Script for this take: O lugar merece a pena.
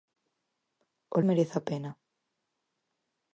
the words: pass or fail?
fail